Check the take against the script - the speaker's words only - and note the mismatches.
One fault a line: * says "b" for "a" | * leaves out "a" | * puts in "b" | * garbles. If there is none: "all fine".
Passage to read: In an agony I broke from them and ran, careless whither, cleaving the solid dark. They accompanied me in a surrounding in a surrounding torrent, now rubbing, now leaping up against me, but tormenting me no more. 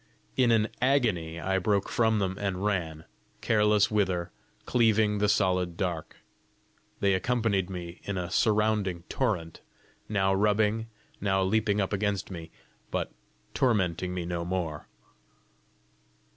* leaves out "in a surrounding"